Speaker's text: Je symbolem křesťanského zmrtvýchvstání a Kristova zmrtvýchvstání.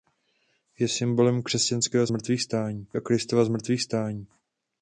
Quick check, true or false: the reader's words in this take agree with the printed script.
true